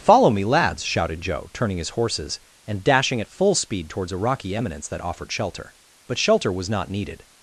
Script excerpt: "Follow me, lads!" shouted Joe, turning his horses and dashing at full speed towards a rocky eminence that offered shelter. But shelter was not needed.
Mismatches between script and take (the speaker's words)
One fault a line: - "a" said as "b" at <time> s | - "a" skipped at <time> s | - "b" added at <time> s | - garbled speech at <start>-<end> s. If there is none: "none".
none